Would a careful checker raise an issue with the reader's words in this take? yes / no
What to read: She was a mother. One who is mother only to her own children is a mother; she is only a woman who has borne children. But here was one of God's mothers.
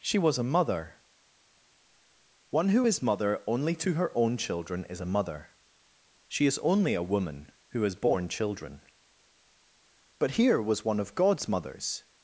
no